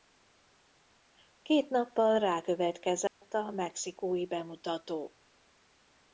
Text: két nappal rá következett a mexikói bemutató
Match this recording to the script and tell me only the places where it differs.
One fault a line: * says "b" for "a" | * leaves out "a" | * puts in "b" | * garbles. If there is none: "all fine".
all fine